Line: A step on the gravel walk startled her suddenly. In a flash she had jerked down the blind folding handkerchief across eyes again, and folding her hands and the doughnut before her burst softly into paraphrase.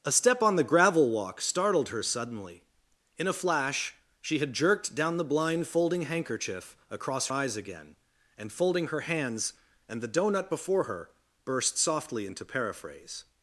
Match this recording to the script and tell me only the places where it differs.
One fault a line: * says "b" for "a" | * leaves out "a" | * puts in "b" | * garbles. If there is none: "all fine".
all fine